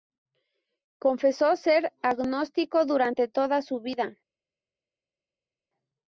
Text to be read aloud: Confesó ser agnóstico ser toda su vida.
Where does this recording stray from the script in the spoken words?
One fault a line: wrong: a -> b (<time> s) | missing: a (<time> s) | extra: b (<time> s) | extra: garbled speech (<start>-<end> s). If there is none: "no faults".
wrong: ser -> durante (2.9 s)